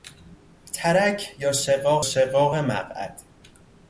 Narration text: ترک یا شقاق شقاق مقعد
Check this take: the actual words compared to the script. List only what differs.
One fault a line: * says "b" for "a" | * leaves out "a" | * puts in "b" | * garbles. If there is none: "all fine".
all fine